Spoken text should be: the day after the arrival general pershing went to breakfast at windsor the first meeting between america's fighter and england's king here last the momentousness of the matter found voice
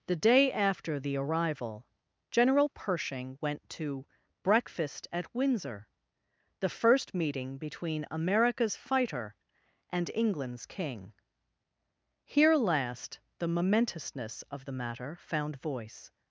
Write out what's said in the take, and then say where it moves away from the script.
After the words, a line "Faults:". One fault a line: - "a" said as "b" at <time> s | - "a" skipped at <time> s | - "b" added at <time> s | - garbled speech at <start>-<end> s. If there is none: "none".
the day after the arrival general pershing went to breakfast at windsor the first meeting between america's fighter and england's king here last the momentousness of the matter found voice
Faults:
none